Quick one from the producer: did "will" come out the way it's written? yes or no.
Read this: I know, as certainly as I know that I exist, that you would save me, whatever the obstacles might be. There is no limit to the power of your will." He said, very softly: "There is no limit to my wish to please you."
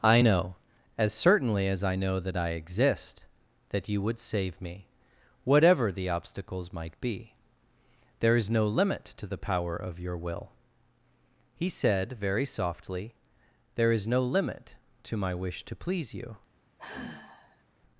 yes